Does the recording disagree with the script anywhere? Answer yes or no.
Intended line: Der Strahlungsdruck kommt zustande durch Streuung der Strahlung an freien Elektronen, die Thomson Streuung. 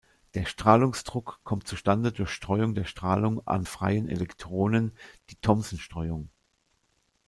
no